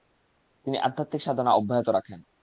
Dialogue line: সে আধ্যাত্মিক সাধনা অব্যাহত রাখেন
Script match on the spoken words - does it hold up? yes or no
no